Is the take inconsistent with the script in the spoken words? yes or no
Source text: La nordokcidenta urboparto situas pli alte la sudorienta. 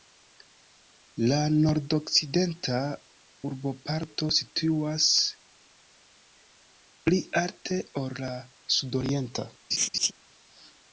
yes